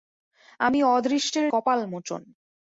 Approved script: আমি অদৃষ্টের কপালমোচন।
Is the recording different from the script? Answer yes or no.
no